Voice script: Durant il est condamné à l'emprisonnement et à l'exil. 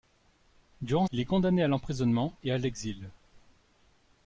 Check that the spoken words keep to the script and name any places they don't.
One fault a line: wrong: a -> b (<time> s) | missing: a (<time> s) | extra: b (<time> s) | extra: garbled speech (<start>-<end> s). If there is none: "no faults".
no faults